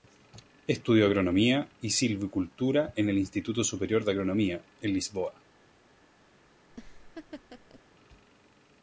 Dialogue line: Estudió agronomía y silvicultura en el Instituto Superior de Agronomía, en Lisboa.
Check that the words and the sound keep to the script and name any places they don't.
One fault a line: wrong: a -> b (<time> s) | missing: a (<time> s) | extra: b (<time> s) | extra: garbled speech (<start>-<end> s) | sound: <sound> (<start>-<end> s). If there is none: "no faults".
sound: laugh (6.7-7.8 s)